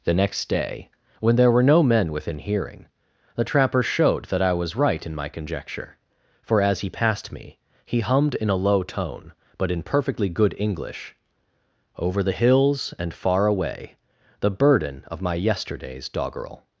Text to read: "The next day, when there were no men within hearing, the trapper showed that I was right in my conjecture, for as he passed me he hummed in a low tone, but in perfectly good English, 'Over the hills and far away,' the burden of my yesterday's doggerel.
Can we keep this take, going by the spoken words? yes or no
yes